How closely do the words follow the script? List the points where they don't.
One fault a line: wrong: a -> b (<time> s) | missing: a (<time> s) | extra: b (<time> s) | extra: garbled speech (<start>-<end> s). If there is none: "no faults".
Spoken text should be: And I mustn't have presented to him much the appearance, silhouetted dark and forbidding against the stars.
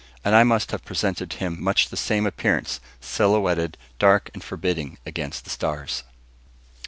wrong: mustn't -> must (0.4 s)
extra: same (2.0 s)